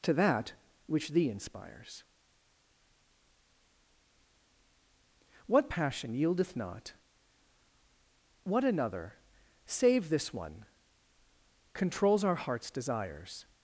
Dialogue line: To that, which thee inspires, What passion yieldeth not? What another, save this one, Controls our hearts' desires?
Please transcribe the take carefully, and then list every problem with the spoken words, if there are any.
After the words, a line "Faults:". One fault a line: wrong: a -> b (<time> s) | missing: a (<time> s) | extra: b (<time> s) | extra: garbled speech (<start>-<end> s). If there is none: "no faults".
To that, which thee inspires, What passion yieldeth not? What another, save this one, Controls our hearts' desires?
Faults:
no faults